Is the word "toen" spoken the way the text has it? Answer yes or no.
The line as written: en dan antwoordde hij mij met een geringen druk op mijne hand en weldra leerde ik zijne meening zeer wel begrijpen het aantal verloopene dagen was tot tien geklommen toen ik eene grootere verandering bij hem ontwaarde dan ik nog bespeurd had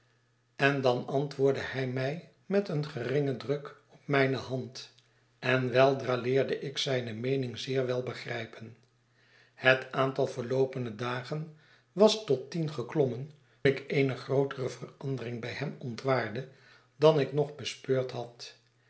no